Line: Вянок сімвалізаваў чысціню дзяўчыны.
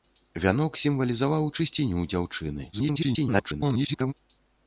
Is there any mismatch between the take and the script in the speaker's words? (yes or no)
yes